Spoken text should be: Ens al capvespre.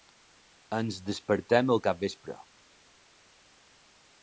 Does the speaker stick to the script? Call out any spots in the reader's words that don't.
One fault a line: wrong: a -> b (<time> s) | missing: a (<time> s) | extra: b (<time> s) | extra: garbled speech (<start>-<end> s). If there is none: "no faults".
extra: despertem (1.1 s)